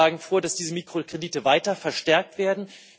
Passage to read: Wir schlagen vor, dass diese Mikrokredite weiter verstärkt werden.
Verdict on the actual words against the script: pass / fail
pass